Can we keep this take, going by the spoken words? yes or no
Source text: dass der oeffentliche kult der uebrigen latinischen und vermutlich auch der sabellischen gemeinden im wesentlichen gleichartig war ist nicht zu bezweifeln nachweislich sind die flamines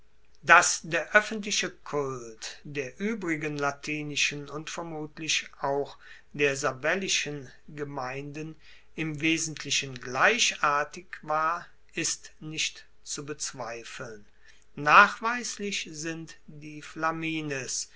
yes